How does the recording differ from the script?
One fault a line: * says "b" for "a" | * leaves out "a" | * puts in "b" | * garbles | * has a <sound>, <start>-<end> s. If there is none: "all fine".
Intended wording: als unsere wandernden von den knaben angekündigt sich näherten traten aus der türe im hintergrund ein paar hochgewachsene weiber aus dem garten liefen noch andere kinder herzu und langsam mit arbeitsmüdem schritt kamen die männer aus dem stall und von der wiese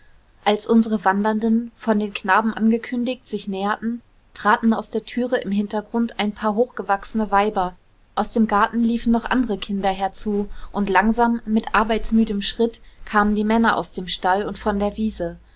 all fine